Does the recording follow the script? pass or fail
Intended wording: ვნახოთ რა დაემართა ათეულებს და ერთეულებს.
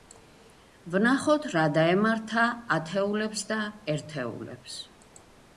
pass